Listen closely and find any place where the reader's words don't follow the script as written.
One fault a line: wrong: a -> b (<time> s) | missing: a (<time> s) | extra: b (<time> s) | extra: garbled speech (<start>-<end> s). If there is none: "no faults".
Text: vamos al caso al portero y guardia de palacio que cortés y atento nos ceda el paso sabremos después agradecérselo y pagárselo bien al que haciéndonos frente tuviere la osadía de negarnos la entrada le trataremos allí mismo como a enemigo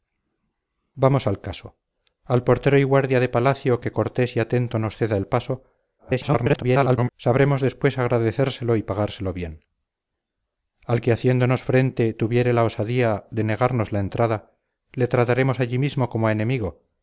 extra: garbled speech (6.0-7.1 s)